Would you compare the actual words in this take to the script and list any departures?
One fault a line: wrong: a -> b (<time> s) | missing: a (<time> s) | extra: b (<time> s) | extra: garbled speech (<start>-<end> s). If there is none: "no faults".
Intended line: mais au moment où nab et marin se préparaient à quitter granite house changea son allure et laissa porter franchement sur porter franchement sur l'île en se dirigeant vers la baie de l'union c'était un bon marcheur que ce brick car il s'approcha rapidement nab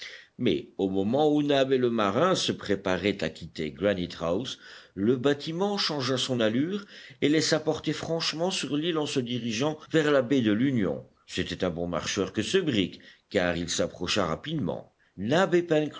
extra: le (1.8 s)
extra: le bâtiment (4.9 s)
missing: porter franchement sur (8.8 s)